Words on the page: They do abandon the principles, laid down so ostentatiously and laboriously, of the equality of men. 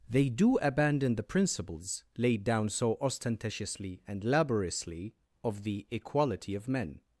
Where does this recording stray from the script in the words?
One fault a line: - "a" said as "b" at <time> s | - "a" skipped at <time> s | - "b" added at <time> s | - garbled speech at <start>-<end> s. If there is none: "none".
none